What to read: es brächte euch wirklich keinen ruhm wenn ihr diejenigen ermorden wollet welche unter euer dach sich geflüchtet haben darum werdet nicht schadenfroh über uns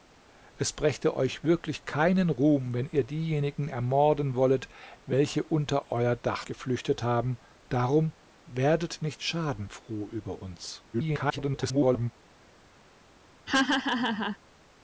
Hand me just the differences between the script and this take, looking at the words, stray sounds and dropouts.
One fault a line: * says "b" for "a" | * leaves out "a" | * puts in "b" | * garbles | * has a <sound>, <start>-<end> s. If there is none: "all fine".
* leaves out "sich"
* garbles
* has a laugh, 13.5-14.4 s